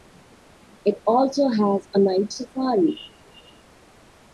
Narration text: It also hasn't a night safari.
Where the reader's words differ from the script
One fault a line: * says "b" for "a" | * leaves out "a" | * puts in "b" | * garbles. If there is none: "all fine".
* says "has" for "hasn't"